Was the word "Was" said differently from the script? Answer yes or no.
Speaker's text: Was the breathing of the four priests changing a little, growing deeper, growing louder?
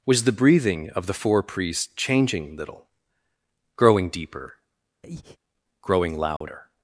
no